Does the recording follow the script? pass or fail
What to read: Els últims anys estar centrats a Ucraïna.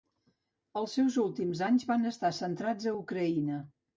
fail